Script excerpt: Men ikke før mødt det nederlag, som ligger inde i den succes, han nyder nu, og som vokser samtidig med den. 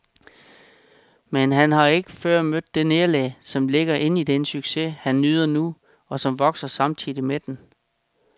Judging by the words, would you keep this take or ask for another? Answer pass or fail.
fail